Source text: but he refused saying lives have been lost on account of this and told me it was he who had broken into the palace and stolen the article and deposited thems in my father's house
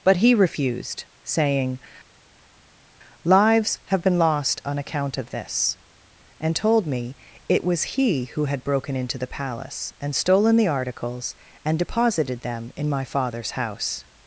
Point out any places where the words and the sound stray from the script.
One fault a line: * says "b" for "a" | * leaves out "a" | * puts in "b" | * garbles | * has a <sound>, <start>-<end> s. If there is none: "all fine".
* says "articles" for "article"
* says "them" for "thems"